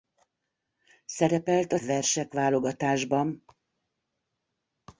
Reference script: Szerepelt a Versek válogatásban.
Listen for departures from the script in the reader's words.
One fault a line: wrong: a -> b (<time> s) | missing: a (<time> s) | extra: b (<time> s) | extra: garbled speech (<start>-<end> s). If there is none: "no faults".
no faults